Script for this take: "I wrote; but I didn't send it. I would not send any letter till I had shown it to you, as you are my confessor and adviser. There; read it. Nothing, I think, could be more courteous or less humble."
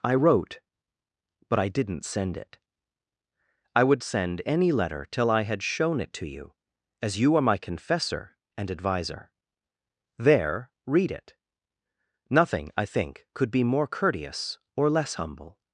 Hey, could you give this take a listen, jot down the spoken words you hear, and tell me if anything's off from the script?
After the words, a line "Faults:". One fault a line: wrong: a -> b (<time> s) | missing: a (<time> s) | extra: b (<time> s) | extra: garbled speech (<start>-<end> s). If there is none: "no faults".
"I wrote; but I didn't send it. I would send any letter till I had shown it to you, as you are my confessor and adviser. There; read it. Nothing, I think, could be more courteous or less humble."
Faults:
missing: not (4.0 s)